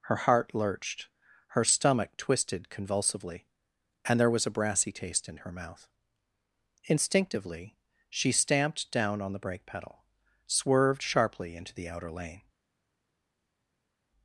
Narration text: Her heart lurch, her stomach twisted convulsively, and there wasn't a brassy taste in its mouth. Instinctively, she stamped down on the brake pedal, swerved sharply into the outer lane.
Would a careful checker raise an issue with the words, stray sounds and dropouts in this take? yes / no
yes